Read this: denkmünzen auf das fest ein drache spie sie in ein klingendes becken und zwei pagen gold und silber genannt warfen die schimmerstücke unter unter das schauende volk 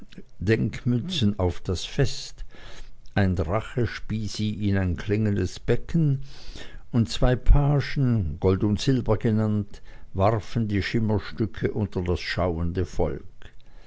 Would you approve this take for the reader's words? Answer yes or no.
no